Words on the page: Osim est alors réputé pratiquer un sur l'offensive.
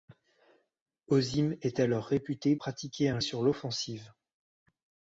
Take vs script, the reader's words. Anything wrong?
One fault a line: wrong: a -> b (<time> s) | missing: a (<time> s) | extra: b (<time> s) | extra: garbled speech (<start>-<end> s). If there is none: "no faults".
no faults